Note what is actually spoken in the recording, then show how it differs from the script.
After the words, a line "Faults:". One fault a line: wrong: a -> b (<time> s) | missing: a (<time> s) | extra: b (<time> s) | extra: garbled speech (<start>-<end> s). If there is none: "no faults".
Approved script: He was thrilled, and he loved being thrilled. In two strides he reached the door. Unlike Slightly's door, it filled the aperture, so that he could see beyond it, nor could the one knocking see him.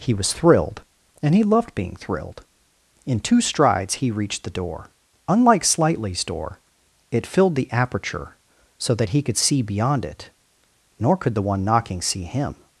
He was thrilled, and he loved being thrilled. In two strides he reached the door. Unlike Slightly's door, it filled the aperture, so that he could see beyond it, nor could the one knocking see him.
Faults:
no faults